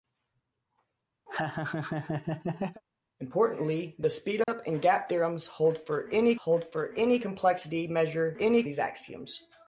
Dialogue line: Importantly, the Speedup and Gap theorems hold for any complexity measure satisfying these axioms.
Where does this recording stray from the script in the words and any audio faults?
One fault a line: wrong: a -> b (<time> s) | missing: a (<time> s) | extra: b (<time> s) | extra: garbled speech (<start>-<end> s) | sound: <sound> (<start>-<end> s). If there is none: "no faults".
sound: laugh (1.3-2.8 s)
sound: dropout (4.4-4.5 s)
extra: hold for any (6.3 s)
wrong: satisfying -> any (8.4 s)